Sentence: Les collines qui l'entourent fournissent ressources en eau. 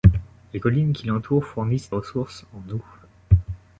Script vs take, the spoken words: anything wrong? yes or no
no